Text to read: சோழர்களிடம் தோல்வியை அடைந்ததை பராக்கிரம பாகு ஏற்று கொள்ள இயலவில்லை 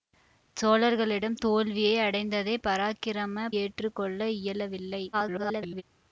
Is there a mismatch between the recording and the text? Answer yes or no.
yes